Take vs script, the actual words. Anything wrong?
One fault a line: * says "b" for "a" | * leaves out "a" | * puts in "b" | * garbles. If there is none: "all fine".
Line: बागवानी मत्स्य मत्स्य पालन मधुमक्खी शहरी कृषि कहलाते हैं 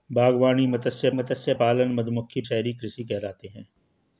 all fine